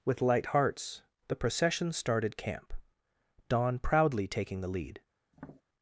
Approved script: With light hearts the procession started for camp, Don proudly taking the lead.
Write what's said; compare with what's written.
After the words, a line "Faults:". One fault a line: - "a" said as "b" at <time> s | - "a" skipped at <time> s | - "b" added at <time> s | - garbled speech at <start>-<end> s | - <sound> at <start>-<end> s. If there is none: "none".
With light hearts the procession started camp, Don proudly taking the lead.
Faults:
- "for" skipped at 2.4 s
- tap at 5.3-5.6 s